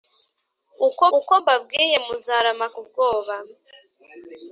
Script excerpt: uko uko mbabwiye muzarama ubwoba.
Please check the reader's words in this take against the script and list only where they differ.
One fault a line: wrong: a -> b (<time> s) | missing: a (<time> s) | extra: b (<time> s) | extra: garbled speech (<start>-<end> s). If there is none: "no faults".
no faults